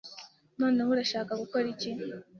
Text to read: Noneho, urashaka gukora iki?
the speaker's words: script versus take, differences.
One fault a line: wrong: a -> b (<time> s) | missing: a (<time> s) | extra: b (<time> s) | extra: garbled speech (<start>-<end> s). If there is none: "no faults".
no faults